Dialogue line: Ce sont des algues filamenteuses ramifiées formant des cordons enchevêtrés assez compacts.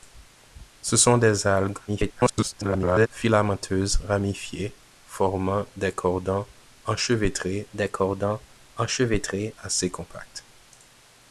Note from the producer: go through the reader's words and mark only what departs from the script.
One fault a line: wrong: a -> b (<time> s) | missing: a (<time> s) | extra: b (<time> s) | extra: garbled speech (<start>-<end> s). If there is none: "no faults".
extra: garbled speech (1.9-3.1 s)
extra: des cordons enchevêtrés (7.7 s)